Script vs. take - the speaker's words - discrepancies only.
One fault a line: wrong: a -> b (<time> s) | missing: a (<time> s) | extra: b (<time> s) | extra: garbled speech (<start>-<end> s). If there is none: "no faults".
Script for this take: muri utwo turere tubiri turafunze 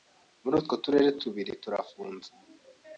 no faults